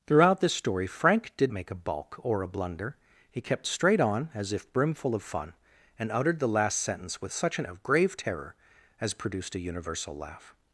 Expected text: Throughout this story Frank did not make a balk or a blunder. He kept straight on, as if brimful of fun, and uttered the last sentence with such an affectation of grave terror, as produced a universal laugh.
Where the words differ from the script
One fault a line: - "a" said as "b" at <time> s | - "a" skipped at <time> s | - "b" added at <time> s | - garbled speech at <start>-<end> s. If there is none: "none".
- "not" skipped at 1.5 s
- "affectation" skipped at 7.7 s